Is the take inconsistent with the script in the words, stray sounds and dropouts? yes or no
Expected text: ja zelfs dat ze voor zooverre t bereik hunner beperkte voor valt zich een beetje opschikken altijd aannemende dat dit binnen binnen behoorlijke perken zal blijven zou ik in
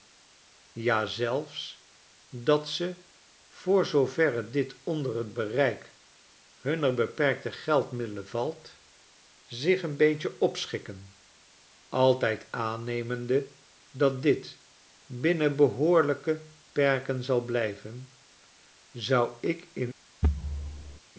yes